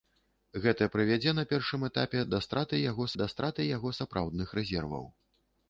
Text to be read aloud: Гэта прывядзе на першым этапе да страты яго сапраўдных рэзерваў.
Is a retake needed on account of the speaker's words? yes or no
yes